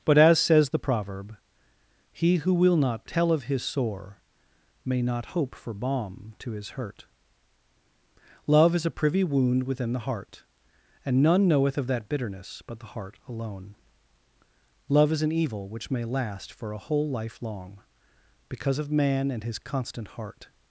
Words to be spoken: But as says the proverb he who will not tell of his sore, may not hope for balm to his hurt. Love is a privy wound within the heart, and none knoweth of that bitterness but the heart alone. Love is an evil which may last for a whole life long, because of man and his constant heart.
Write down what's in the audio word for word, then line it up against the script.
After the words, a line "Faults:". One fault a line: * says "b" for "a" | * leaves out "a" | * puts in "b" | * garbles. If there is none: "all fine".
But as says the proverb he who will not tell of his sore, may not hope for balm to his hurt. Love is a privy wound within the heart, and none knoweth of that bitterness but the heart alone. Love is an evil which may last for a whole life long, because of man and his constant heart.
Faults:
all fine